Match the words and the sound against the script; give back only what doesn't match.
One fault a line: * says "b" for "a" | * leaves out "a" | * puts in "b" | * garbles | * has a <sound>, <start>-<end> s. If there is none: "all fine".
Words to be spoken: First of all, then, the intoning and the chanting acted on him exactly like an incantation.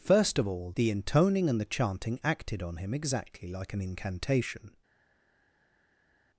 * leaves out "then"